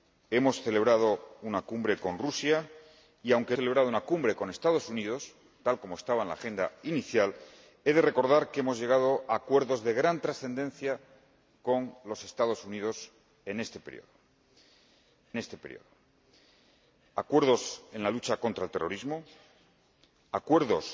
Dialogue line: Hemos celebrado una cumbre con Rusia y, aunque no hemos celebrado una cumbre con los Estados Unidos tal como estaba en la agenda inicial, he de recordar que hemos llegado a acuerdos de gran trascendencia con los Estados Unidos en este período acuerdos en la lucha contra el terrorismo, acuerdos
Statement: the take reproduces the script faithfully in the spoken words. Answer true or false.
false